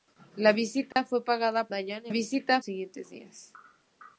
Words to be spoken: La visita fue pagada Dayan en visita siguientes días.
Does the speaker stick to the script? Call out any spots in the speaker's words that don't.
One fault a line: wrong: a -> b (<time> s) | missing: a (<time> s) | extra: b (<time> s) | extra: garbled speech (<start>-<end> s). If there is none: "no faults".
no faults